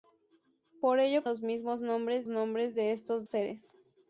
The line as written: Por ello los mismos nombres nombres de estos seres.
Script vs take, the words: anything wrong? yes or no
no